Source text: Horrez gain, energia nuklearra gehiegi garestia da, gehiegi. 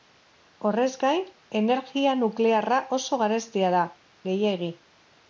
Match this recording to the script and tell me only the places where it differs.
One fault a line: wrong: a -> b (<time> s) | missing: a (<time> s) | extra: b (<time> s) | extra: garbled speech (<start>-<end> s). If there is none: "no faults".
wrong: gehiegi -> oso (3.0 s)